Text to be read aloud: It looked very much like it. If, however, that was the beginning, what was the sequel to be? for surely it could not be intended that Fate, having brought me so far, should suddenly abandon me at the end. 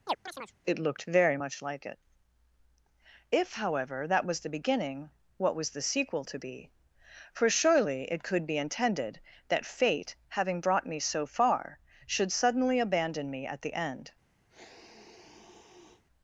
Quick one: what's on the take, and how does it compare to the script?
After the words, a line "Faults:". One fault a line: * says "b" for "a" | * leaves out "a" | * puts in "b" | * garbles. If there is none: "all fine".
It looked very much like it. If, however, that was the beginning, what was the sequel to be? for surely it could be intended that Fate, having brought me so far, should suddenly abandon me at the end.
Faults:
* leaves out "not"